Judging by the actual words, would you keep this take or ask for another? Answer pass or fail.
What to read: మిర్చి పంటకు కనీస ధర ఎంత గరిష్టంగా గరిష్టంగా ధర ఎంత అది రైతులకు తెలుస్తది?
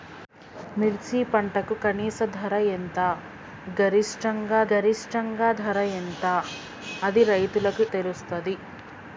pass